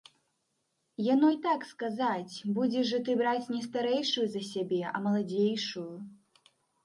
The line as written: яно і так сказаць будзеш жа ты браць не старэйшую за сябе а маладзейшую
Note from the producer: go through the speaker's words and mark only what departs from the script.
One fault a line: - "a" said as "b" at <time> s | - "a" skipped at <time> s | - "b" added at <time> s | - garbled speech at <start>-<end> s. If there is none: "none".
none